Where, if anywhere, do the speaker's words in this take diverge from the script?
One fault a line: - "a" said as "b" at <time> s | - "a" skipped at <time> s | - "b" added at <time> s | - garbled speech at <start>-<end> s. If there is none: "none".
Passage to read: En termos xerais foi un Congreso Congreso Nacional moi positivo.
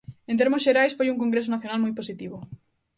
- "Congreso" skipped at 1.5 s